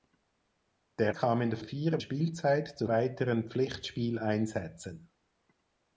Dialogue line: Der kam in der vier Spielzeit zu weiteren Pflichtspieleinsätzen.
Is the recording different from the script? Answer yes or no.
no